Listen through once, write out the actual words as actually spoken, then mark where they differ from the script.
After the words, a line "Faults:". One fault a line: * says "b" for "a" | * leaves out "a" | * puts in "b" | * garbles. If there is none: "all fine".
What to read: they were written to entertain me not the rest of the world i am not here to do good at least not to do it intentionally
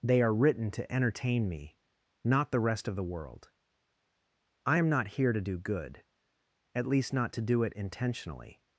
they are written to entertain me not the rest of the world i am not here to do good at least not to do it intentionally
Faults:
* says "are" for "were"